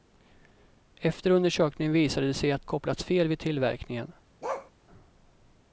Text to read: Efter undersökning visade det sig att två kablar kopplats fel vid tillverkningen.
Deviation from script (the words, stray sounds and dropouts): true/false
true